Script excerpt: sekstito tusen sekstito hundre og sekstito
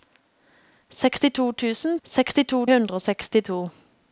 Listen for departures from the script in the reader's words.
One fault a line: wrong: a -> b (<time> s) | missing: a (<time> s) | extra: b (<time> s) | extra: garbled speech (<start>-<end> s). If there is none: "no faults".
no faults